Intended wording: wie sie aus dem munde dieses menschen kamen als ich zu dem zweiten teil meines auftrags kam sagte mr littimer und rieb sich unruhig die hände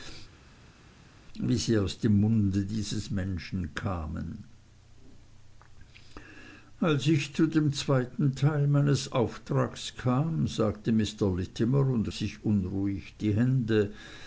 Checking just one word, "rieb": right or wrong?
wrong